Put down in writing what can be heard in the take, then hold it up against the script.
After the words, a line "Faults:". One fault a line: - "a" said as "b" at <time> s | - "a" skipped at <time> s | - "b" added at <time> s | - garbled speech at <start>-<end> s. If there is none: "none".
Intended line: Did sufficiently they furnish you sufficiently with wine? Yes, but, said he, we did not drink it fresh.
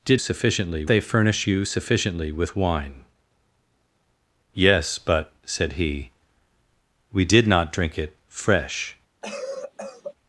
Did sufficiently they furnish you sufficiently with wine? Yes, but, said he, we did not drink it fresh.
Faults:
none